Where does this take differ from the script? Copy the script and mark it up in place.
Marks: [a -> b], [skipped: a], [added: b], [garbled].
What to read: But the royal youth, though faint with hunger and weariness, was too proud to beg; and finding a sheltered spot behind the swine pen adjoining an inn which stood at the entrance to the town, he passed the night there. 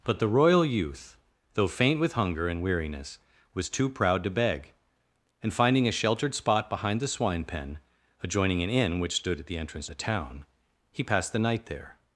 But the royal youth, though faint with hunger and weariness, was too proud to beg; and finding a sheltered spot behind the swine pen adjoining an inn which stood at the entrance [skipped: to] the town, he passed the night there.